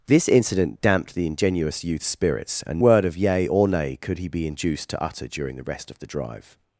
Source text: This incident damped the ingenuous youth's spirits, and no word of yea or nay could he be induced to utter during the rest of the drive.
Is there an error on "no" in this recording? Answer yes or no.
yes